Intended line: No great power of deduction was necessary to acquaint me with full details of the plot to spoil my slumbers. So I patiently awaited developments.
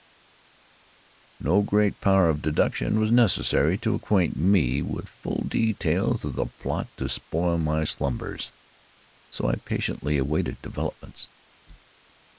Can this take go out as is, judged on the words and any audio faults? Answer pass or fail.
pass